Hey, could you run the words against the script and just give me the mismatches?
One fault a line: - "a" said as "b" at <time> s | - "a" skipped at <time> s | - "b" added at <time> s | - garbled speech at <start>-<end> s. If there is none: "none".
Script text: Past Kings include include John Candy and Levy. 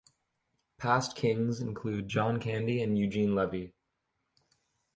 - "include" skipped at 2.1 s
- "Eugene" added at 3.0 s